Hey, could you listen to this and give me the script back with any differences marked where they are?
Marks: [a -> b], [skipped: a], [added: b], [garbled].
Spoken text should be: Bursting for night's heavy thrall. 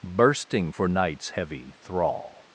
Bursting for night's heavy thrall.